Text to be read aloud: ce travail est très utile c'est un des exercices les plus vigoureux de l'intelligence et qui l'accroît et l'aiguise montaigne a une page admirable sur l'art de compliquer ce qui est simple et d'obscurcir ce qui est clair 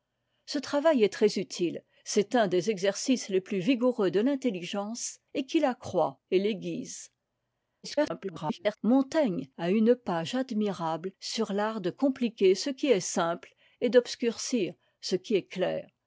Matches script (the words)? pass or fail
fail